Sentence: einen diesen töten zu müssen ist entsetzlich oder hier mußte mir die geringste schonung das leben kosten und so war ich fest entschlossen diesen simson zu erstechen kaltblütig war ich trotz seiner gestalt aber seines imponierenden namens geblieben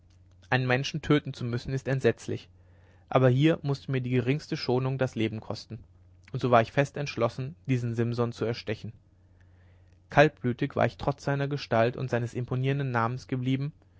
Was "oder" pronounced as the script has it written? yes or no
no